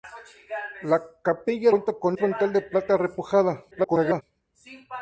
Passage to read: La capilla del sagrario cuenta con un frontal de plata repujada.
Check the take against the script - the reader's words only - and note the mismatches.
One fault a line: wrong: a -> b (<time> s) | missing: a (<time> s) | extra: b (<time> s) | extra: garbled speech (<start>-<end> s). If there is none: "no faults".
missing: del sagrario (1.7 s)
missing: un (2.2 s)
extra: garbled speech (3.7-4.2 s)